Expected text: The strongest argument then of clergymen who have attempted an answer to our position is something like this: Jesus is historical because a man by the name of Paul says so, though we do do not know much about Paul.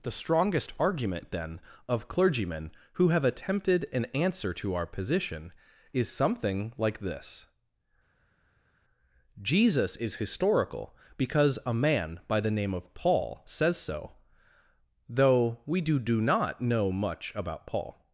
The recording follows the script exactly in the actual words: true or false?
true